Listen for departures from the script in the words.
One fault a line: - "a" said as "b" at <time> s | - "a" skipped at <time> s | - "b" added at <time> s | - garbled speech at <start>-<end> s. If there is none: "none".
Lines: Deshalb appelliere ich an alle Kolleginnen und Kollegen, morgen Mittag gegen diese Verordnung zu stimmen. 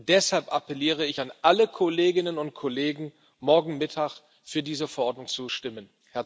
- "gegen" said as "für" at 4.4 s